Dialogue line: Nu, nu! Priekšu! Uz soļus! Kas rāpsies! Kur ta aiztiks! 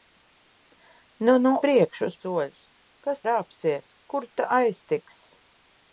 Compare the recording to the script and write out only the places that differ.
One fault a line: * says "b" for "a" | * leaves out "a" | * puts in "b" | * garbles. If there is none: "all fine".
all fine